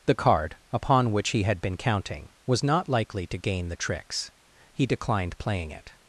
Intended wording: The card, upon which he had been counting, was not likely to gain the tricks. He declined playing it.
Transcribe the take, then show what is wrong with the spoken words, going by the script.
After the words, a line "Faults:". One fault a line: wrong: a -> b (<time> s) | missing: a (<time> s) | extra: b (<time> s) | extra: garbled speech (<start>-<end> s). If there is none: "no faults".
The card, upon which he had been counting, was not likely to gain the tricks. He declined playing it.
Faults:
no faults